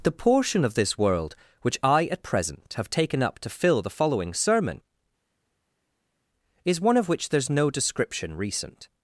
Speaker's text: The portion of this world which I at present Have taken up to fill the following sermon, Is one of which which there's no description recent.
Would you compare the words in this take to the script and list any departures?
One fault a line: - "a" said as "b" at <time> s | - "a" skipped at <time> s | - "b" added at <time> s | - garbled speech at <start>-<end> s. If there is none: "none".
- "which" skipped at 7.3 s